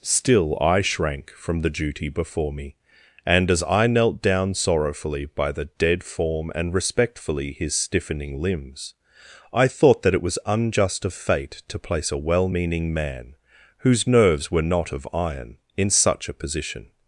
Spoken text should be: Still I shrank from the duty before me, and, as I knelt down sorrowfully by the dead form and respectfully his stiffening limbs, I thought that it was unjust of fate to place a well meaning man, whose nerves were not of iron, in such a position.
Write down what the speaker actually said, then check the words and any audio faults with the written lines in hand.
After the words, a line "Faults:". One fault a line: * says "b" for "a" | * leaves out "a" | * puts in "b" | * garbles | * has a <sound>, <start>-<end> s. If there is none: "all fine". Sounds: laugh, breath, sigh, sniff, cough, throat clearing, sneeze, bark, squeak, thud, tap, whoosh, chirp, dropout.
Still I shrank from the duty before me, and, as I knelt down sorrowfully by the dead form and respectfully his stiffening limbs, I thought that it was unjust of fate to place a well meaning man, whose nerves were not of iron, in such a position.
Faults:
all fine